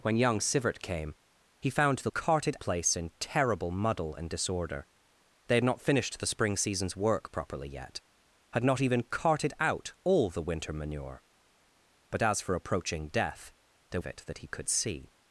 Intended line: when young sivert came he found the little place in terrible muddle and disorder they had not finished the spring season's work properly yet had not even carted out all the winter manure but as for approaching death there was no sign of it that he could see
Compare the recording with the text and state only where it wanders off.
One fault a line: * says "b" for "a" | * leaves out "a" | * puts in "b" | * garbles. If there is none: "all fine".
* says "carted" for "little"
* leaves out "was no sign"